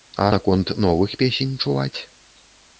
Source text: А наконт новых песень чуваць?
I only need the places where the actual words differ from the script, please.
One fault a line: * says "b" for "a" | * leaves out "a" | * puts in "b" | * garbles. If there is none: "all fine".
all fine